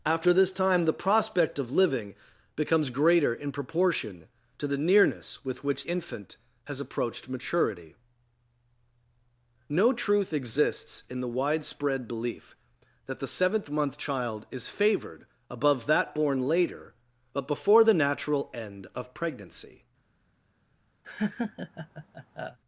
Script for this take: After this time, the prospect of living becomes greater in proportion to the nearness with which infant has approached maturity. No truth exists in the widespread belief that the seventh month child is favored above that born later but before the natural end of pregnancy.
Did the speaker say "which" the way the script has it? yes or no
yes